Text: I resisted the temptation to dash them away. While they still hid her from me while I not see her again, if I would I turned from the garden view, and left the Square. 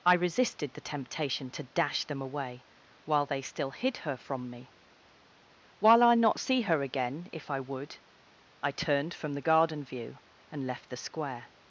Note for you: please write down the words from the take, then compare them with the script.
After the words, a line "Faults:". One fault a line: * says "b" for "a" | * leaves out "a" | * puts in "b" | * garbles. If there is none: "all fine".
I resisted the temptation to dash them away. While they still hid her from me while I not see her again, if I would I turned from the garden view, and left the Square.
Faults:
all fine